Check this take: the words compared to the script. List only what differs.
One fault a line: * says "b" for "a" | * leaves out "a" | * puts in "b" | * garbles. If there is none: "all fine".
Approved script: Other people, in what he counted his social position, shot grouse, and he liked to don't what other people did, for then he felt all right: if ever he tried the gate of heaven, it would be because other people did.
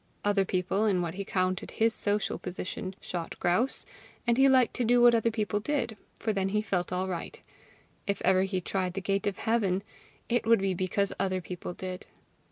* says "do" for "don't"